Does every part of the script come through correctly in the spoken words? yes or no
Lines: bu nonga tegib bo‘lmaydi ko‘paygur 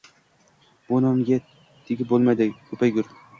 yes